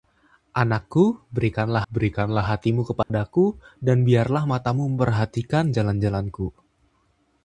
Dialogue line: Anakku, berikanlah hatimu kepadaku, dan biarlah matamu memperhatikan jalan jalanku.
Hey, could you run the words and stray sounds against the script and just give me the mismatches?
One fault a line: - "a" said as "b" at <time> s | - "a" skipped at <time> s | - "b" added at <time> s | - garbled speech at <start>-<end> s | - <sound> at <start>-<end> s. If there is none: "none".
- "berikanlah" added at 1.9 s
- dropout at 3.0-3.1 s